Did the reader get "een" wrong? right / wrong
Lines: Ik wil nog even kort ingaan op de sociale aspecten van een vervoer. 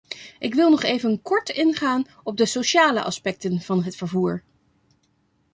wrong